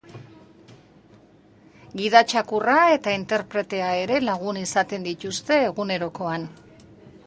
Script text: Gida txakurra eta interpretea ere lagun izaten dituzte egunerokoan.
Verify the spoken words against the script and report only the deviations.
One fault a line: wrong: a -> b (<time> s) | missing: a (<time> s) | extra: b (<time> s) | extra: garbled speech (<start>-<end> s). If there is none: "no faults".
no faults